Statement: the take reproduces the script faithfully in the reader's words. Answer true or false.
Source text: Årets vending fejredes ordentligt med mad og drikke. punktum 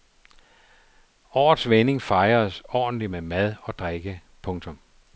true